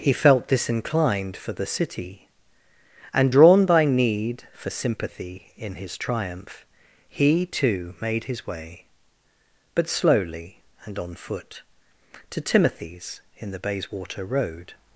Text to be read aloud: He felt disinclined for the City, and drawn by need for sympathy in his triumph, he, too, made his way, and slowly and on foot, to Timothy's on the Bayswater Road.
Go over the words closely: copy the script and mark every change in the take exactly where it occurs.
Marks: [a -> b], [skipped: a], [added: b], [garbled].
He felt disinclined for the City, and drawn by need for sympathy in his triumph, he, too, made his way, [and -> but] slowly and on foot, to Timothy's [on -> in] the Bayswater Road.